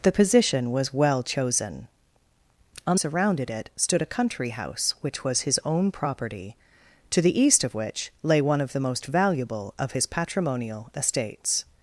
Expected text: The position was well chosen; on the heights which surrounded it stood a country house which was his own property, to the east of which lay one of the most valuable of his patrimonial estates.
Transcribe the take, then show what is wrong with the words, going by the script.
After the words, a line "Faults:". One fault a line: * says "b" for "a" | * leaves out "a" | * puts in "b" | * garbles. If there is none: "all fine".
The position was well chosen; on surrounded it stood a country house which was his own property, to the east of which lay one of the most valuable of his patrimonial estates.
Faults:
* leaves out "the heights which"